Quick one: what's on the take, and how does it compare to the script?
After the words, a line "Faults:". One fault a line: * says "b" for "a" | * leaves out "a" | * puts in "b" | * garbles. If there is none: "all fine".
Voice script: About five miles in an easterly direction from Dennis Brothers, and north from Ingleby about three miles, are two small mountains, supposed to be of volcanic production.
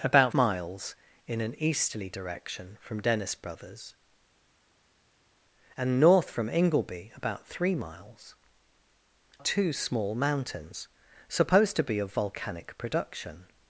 About miles in an easterly direction from Dennis Brothers, and north from Ingleby about three miles, two small mountains, supposed to be of volcanic production.
Faults:
* leaves out "five"
* leaves out "are"